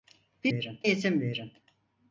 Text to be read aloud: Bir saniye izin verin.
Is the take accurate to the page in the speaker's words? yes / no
no